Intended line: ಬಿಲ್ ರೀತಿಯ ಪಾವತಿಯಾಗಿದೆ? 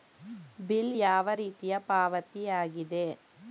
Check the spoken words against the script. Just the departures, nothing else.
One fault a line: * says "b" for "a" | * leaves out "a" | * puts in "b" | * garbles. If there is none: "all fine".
* puts in "ಯಾವ"